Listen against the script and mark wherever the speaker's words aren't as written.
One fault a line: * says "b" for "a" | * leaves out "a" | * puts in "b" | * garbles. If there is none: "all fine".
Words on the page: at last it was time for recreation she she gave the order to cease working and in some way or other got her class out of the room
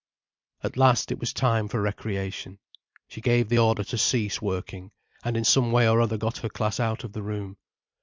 * leaves out "she"